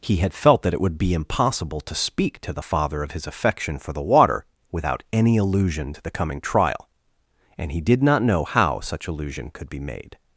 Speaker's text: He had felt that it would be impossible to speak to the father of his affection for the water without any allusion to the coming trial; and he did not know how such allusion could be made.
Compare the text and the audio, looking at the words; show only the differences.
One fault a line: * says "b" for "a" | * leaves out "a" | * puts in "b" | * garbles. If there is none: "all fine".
all fine